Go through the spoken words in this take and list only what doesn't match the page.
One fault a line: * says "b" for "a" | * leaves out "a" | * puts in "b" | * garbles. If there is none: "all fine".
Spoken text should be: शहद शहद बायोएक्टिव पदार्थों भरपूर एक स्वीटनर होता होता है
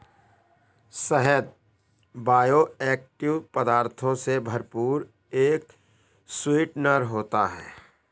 * leaves out "शहद"
* puts in "से"
* leaves out "होता"